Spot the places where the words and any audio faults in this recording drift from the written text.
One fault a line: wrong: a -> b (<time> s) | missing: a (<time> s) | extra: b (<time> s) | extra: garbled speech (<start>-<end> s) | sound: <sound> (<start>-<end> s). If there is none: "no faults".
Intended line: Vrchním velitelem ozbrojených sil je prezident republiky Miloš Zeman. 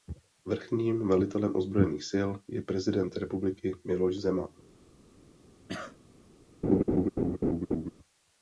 sound: cough (5.7-6.0 s)
sound: laugh (6.6-7.9 s)